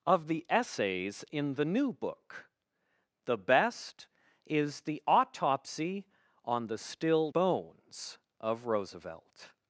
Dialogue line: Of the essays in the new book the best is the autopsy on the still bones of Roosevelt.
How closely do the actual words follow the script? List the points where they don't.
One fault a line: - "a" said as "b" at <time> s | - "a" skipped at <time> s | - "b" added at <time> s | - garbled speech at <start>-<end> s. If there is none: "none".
none